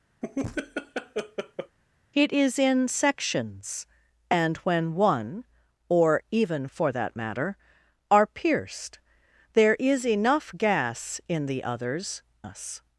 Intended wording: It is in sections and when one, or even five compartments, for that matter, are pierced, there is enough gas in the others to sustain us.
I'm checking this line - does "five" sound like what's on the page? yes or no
no